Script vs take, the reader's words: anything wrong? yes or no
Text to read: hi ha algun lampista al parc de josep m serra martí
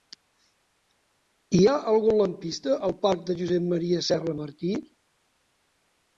no